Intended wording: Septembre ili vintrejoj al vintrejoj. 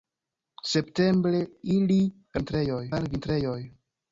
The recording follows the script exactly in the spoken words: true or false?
true